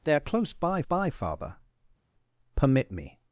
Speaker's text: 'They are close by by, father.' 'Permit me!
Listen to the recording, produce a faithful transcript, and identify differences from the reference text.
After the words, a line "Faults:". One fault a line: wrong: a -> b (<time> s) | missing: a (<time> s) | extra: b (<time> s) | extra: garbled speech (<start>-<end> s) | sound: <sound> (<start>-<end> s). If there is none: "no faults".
'They are close by by, father.' 'Permit me!
Faults:
no faults